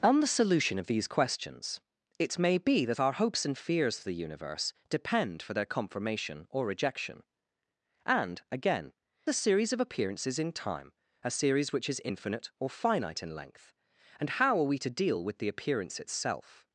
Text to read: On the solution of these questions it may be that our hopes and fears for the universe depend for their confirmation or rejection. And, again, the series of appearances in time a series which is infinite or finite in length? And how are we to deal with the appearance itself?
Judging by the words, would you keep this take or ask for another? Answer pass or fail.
pass